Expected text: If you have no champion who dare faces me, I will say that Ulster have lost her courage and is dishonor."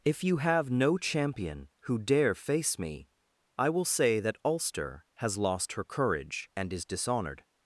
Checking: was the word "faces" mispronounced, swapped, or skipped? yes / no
yes